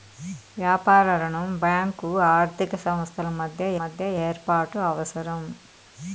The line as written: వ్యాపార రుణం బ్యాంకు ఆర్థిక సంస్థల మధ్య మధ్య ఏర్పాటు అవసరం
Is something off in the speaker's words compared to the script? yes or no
no